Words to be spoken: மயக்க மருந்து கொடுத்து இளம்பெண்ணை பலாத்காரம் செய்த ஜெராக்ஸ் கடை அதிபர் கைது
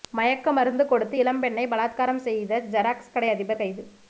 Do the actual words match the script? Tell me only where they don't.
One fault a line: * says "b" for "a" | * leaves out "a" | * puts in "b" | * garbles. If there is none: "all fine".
all fine